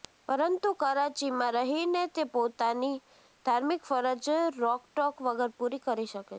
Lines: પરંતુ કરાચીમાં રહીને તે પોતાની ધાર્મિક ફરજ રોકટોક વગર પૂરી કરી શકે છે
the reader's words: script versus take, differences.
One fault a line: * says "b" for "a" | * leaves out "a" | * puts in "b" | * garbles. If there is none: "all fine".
all fine